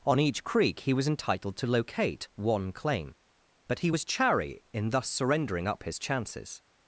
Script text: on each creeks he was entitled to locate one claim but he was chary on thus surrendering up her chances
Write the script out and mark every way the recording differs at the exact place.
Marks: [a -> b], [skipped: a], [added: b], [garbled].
on each [creeks -> creek] he was entitled to locate one claim but he was chary [on -> in] thus surrendering up [her -> his] chances